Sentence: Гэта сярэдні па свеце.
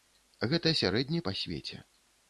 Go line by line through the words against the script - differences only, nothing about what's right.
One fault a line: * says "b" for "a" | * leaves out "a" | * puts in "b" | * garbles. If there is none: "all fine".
all fine